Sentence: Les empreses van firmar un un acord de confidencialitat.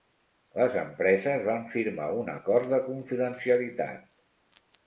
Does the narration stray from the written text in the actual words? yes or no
yes